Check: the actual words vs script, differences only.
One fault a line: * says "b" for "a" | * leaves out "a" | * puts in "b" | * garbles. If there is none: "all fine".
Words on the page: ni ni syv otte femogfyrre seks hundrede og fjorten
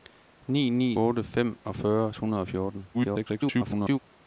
* leaves out "syv"
* leaves out "seks"
* garbles